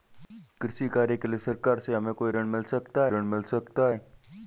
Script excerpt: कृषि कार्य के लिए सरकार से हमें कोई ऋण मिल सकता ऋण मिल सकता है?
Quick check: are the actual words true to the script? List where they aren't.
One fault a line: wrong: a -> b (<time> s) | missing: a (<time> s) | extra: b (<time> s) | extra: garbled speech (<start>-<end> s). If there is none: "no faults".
no faults